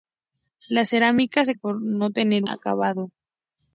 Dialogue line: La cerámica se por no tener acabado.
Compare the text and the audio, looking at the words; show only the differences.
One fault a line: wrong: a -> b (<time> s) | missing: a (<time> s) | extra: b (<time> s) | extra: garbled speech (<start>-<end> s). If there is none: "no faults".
no faults